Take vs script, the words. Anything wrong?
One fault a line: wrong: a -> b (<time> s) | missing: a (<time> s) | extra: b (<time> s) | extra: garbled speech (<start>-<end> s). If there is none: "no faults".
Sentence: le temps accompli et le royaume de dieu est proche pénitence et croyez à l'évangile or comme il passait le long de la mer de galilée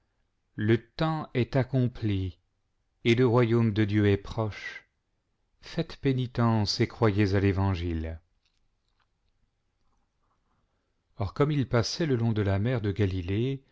extra: est (1.3 s)
extra: faites (5.6 s)